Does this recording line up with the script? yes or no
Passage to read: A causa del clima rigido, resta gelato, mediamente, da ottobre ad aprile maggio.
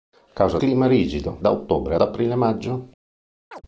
no